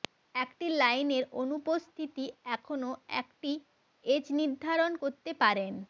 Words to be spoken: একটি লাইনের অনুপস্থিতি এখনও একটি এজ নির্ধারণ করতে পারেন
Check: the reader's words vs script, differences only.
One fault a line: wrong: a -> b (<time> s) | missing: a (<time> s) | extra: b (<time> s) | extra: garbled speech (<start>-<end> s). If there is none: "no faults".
no faults